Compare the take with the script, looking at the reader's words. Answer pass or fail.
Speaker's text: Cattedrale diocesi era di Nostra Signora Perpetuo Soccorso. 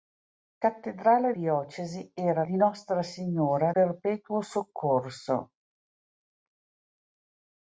pass